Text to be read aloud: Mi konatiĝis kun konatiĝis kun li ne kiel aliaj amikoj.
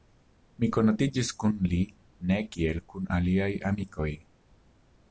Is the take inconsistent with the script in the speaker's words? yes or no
yes